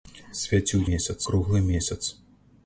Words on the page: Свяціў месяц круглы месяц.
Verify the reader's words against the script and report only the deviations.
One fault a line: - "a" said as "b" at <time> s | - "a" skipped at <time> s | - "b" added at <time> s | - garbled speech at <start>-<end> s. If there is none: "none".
none